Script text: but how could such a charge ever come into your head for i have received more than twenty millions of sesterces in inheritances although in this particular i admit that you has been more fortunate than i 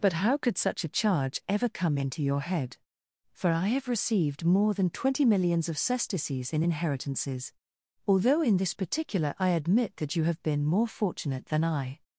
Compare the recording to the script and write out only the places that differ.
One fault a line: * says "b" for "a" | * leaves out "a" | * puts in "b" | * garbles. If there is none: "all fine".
* says "have" for "has"